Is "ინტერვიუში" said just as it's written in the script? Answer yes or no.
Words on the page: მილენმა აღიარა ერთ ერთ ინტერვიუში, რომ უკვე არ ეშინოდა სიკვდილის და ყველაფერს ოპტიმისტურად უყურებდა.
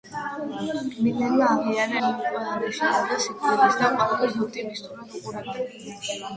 no